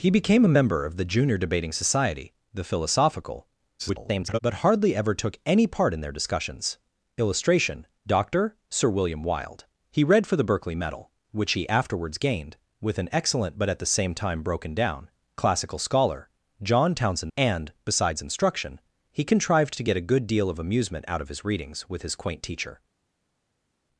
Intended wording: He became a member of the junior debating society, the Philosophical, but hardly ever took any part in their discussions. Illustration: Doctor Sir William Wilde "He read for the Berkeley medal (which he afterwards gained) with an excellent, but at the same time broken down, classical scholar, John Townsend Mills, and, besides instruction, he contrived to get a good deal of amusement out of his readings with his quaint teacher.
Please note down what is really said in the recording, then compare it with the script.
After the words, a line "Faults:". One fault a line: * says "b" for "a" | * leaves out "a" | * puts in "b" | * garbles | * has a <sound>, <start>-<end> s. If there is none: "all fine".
He became a member of the junior debating society, the Philosophical, [garbled] but hardly ever took any part in their discussions. Illustration: Doctor Sir William Wilde "He read for the Berkeley medal (which he afterwards gained) with an excellent, but at the same time broken down, classical scholar, John Townsend And, besides instruction, he contrived to get a good deal of amusement out of his readings with his quaint teacher.
Faults:
* garbles
* leaves out "Mills"